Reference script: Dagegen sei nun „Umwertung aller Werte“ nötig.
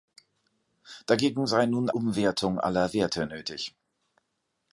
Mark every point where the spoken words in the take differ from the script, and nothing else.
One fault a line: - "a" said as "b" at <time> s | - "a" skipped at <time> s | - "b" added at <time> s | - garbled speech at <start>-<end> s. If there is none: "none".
none